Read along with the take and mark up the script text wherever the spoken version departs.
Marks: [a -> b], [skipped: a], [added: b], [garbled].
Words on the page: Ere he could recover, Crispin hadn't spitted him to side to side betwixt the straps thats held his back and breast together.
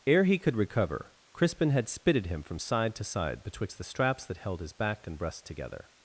Ere he could recover, Crispin [hadn't -> had] spitted him [to -> from] side to side betwixt the straps [thats -> that] held his back and breast together.